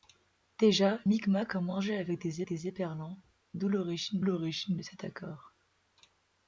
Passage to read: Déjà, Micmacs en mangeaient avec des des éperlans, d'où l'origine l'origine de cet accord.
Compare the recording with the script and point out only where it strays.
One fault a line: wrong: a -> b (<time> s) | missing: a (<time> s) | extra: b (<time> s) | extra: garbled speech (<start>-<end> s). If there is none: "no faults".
no faults